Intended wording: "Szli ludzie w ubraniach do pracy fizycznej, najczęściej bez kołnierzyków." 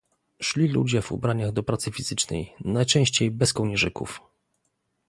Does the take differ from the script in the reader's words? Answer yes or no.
no